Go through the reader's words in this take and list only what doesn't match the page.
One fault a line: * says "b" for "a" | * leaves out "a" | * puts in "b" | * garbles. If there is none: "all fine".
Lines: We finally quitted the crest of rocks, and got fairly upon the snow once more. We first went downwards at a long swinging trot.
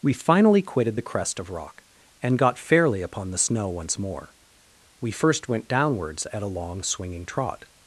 * says "rock" for "rocks"